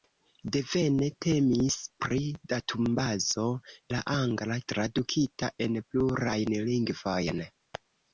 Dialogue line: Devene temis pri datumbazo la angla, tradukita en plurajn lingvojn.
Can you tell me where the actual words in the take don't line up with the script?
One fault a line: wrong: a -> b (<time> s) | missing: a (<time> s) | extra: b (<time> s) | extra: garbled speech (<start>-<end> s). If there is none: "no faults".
no faults